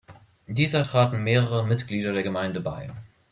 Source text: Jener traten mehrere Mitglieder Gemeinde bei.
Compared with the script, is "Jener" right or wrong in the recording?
wrong